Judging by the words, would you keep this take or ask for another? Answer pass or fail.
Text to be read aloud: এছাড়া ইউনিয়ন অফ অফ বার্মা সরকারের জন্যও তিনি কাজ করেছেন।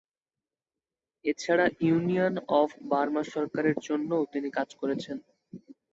fail